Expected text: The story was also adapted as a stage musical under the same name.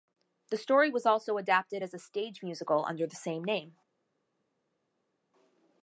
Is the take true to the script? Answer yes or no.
yes